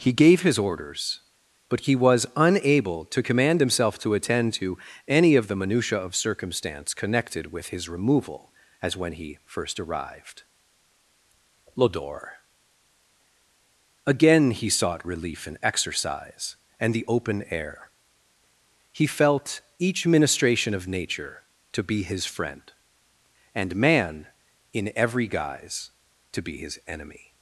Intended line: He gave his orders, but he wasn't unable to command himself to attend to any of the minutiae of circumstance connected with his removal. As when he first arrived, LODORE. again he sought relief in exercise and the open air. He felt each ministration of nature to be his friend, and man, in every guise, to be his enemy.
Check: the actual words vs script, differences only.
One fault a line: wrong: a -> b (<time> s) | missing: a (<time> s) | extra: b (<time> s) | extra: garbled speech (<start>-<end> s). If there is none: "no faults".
wrong: wasn't -> was (1.9 s)